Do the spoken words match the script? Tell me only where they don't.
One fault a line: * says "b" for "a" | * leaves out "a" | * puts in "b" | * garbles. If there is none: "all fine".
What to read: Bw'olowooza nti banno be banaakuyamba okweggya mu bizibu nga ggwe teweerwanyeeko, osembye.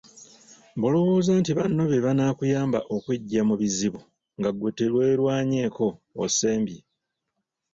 all fine